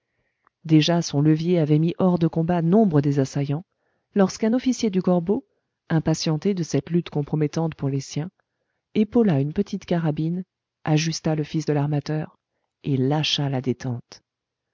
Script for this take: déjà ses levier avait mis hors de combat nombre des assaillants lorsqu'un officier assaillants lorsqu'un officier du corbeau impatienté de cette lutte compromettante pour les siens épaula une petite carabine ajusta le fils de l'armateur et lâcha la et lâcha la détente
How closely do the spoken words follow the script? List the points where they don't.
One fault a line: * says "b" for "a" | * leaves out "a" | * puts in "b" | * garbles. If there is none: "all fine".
* says "son" for "ses"
* leaves out "assaillants lorsqu'un officier"
* leaves out "et lâcha la"